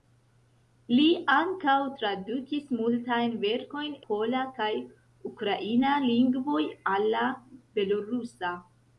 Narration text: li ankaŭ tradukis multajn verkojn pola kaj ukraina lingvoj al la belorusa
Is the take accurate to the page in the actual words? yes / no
yes